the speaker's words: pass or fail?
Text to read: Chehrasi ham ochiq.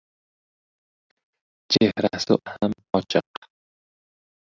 pass